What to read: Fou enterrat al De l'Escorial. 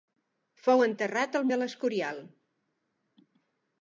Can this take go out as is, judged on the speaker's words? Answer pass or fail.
pass